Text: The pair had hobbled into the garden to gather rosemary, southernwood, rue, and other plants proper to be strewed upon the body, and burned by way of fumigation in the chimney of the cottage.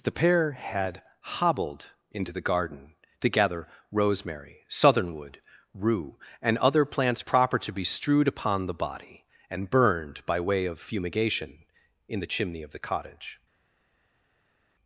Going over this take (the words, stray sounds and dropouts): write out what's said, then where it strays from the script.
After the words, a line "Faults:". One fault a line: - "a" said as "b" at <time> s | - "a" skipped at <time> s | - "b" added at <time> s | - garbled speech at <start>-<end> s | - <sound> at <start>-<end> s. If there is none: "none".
The pair had hobbled into the garden to gather rosemary, southernwood, rue, and other plants proper to be strewed upon the body, and burned by way of fumigation in the chimney of the cottage.
Faults:
none